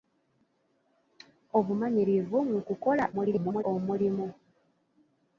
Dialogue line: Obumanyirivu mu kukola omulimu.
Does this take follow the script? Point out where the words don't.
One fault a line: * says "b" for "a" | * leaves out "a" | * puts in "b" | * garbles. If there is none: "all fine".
* garbles